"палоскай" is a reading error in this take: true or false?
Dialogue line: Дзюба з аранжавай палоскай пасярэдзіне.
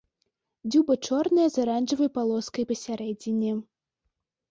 false